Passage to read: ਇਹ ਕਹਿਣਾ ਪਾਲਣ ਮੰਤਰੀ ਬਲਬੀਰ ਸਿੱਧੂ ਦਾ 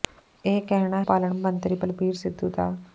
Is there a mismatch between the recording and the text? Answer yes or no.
no